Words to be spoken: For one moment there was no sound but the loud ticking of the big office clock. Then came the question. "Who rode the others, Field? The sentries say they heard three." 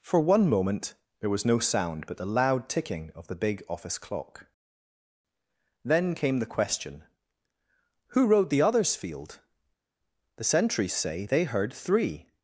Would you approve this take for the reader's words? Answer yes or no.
yes